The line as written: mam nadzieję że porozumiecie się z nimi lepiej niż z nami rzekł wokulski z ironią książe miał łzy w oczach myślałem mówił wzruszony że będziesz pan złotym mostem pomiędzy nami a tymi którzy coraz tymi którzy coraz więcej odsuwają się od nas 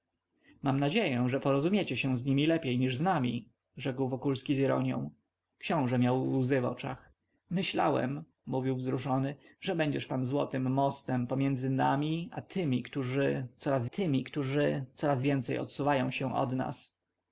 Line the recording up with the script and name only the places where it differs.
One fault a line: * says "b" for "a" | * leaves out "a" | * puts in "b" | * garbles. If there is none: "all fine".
all fine